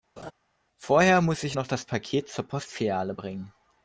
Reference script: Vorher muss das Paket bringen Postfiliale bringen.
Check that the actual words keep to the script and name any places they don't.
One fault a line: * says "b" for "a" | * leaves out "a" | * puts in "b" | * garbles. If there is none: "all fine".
* puts in "ich noch"
* says "zur" for "bringen"